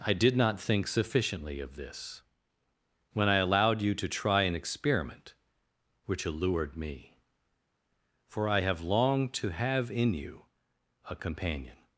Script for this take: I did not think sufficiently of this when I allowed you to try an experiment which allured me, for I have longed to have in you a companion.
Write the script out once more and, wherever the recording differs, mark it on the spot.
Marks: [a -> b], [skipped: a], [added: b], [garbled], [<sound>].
I did not think sufficiently of this when I allowed you to try an experiment which allured me, for I have longed to have in you a companion.